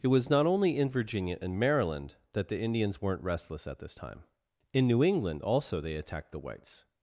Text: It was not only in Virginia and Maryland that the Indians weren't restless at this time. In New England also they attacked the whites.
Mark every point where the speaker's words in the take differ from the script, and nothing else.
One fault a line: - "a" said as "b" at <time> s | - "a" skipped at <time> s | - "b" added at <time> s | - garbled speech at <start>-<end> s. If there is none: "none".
none